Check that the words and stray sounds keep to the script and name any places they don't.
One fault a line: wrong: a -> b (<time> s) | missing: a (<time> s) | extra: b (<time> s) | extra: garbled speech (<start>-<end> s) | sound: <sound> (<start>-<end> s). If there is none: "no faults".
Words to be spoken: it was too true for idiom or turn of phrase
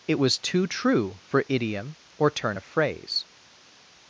no faults